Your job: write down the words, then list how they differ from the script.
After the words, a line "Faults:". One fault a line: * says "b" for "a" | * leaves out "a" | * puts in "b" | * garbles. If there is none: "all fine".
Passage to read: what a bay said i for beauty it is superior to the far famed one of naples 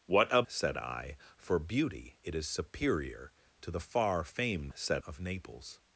what a said i for beauty it is superior to the far famed said of naples
Faults:
* leaves out "bay"
* says "said" for "one"